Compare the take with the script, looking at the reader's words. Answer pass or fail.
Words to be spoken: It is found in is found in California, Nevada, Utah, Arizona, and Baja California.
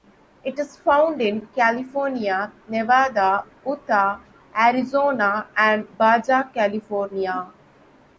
fail